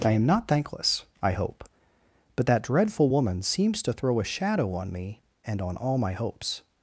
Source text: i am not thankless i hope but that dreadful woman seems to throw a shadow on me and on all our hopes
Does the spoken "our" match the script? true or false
false